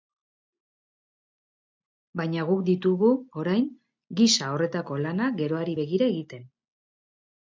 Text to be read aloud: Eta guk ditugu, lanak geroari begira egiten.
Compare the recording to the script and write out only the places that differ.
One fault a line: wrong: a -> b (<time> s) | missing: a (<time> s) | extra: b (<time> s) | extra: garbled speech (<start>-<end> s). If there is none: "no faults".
wrong: Eta -> Baina (2.2 s)
extra: orain gisa horretako (3.4 s)